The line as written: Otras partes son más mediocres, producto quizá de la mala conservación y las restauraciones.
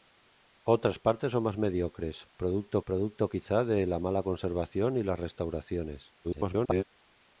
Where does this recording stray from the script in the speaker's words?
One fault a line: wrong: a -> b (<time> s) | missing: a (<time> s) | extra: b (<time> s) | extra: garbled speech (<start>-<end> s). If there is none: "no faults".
extra: producto (2.9 s)
extra: garbled speech (6.2-6.8 s)